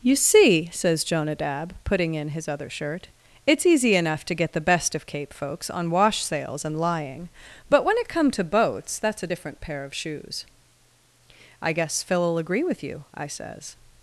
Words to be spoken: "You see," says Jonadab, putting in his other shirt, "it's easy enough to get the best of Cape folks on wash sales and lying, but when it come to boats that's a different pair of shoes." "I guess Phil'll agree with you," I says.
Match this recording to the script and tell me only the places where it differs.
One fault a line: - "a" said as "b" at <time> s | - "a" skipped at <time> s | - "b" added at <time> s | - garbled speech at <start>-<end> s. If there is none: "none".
none